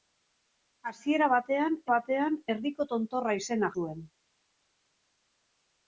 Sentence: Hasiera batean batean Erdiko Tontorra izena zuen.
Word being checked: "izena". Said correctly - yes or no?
yes